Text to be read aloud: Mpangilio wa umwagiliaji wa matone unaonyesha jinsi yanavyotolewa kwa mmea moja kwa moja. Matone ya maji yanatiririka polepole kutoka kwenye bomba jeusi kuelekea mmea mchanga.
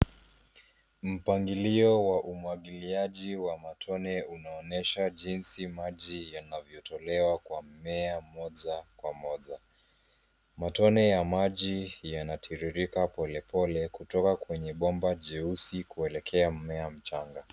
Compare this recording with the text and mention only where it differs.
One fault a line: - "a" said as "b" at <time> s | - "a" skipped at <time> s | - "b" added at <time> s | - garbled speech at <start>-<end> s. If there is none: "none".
- "maji" added at 5.7 s